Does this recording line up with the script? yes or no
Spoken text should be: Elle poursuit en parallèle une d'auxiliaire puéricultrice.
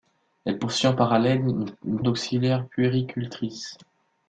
yes